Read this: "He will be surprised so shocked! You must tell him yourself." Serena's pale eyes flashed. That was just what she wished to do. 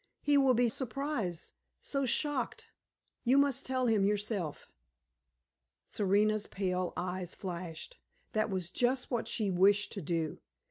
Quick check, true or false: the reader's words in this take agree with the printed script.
true